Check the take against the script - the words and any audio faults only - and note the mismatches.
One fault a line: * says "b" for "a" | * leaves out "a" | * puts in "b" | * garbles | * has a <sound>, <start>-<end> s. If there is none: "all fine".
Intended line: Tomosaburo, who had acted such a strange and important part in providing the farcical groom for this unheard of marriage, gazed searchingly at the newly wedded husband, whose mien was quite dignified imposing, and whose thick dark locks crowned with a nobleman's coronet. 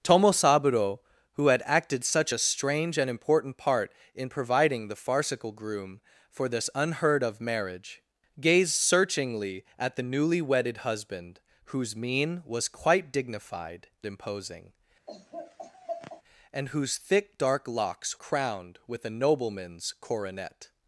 * has a laugh, 15.1-16.2 s